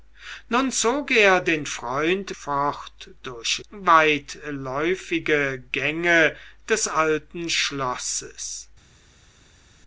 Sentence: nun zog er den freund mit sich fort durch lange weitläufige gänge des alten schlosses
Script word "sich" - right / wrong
wrong